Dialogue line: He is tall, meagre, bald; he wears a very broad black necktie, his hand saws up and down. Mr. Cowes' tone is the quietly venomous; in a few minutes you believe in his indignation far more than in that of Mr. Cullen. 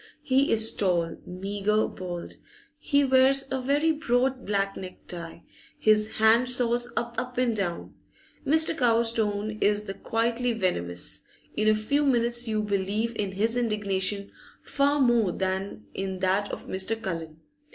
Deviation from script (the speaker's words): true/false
true